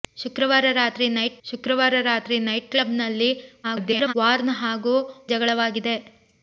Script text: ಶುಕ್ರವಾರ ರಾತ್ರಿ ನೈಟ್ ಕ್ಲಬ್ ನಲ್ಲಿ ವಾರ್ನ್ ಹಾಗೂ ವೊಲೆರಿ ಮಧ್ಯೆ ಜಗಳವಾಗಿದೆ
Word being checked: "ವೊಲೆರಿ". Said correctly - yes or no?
no